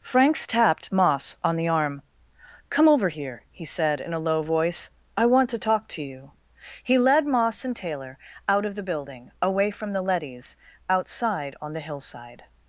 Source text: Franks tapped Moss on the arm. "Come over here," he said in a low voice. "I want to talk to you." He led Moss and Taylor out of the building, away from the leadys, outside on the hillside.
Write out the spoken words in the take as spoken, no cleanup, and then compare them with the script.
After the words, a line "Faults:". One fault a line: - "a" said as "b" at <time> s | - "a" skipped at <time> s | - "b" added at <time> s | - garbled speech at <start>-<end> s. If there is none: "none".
Franks tapped Moss on the arm. "Come over here," he said in a low voice. "I want to talk to you." He led Moss and Taylor out of the building, away from the leadys, outside on the hillside.
Faults:
none